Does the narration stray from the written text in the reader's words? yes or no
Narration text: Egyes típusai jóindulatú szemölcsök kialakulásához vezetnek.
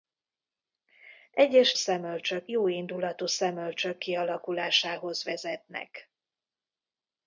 yes